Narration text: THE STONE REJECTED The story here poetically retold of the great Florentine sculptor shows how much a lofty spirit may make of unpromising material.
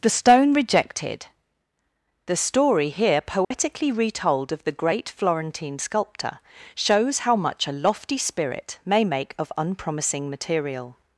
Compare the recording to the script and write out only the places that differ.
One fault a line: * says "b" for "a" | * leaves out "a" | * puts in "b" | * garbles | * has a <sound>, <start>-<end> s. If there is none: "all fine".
* has a dropout, 3.4-3.5 s